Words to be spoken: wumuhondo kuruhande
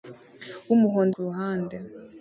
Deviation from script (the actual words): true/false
false